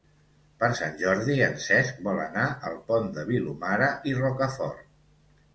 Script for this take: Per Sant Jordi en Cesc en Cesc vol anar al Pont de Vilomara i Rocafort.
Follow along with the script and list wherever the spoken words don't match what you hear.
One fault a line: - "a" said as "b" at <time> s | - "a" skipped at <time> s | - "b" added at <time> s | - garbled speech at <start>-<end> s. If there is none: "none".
- "en Cesc" skipped at 2.0 s